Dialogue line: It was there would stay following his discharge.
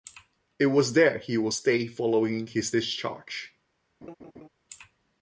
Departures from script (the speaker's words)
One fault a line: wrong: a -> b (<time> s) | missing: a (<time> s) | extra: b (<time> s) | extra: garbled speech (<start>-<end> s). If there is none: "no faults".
extra: he (1.2 s)